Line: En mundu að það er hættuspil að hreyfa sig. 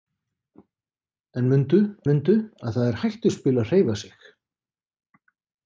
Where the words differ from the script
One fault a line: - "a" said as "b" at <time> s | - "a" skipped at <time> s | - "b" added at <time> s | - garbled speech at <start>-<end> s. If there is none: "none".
- "mundu" added at 2.1 s